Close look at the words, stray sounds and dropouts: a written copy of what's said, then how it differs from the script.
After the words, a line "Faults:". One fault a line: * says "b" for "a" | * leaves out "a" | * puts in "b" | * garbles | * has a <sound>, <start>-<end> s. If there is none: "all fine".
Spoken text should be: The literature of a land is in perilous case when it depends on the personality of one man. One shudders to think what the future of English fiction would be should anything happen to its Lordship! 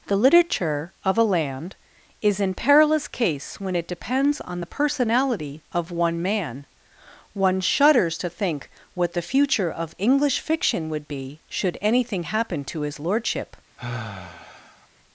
The literature of a land is in perilous case when it depends on the personality of one man. One shudders to think what the future of English fiction would be should anything happen to his Lordship!
Faults:
* says "his" for "its"
* has a sigh, 13.8-14.9 s